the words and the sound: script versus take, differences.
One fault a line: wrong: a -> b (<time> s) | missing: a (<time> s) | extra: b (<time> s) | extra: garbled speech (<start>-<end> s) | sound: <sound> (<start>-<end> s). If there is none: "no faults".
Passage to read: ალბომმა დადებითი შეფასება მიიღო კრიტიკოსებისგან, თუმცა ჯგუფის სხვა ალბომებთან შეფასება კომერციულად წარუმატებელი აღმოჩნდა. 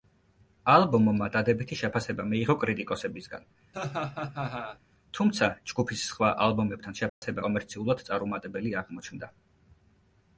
sound: laugh (3.7-4.8 s)
sound: dropout (7.1-7.2 s)